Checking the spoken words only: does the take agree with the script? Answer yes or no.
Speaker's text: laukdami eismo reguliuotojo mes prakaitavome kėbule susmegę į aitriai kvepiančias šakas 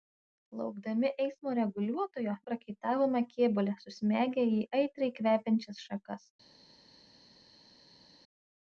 no